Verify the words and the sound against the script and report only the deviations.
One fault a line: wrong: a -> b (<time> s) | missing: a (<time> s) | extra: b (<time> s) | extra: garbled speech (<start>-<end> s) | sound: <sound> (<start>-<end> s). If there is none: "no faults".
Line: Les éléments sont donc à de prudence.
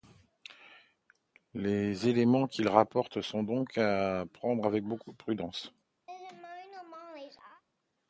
extra: qu'il rapporte (2.5 s)
extra: prendre avec beaucoup (4.3 s)
sound: laugh (6.1-7.6 s)